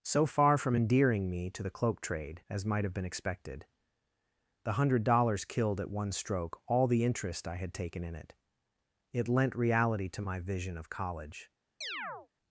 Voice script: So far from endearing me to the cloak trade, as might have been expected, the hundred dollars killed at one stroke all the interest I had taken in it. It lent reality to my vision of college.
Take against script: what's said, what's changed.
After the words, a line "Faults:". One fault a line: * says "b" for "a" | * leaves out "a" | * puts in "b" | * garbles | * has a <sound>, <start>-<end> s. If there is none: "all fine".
So far from endearing me to the cloak trade, as might have been expected, the hundred dollars killed at one stroke all the interest I had taken in it. It lent reality to my vision of college.
Faults:
* has a chirp, 11.8-12.3 s